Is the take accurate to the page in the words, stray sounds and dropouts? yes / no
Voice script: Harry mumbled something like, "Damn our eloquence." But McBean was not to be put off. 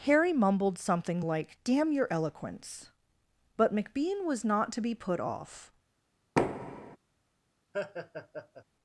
no